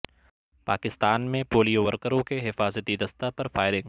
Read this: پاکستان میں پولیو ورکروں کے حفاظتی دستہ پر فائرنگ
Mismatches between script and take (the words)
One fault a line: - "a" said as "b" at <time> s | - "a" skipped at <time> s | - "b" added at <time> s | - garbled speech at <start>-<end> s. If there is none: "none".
none